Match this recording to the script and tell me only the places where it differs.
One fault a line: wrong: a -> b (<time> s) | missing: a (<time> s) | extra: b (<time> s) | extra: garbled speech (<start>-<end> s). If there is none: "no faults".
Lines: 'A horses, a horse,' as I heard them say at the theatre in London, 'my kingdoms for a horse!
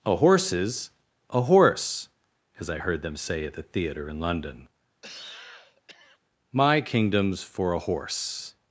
no faults